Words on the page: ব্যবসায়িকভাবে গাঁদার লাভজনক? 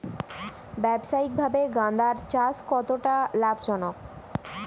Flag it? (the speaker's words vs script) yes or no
yes